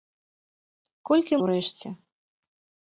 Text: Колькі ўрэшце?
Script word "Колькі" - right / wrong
right